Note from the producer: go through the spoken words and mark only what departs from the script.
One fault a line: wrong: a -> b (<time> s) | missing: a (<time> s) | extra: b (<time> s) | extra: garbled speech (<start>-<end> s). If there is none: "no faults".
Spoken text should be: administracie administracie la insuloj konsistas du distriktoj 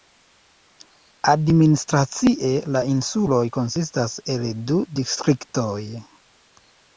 missing: administracie (2.5 s)
extra: el (4.4 s)